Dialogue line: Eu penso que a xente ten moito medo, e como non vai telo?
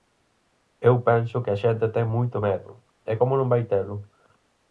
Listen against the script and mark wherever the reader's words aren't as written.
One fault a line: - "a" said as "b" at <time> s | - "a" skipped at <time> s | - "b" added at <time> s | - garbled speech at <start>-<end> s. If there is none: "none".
none